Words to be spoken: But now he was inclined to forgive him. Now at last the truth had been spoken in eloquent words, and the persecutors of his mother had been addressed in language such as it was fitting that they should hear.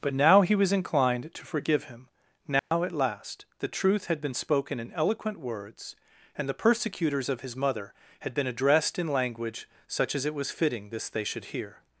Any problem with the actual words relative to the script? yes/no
yes